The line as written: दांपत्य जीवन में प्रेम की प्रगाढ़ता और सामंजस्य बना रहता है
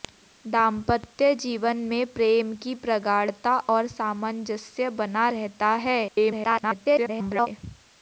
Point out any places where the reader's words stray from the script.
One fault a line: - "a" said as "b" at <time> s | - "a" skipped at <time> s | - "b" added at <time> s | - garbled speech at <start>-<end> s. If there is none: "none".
- garbled speech at 6.1-7.5 s